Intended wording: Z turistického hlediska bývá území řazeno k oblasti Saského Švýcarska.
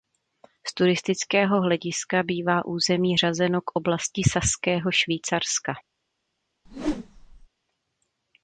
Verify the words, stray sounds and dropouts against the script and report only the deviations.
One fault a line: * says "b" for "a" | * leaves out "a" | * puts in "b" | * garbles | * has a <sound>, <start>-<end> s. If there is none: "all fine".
* has a whoosh, 6.7-7.5 s